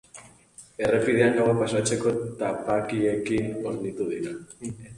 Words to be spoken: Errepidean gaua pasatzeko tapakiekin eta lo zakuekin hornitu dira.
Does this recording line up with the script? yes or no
no